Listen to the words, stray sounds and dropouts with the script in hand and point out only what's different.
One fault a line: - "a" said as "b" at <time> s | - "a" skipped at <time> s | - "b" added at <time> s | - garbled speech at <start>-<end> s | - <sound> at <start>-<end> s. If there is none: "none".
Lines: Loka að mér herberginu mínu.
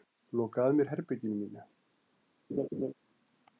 - laugh at 2.5-2.9 s